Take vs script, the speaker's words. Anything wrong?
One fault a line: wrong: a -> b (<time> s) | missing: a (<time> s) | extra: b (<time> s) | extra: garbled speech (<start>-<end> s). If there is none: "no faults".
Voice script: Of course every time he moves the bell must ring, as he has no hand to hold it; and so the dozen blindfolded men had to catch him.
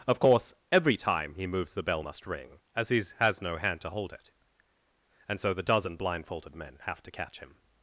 wrong: had -> have (6.8 s)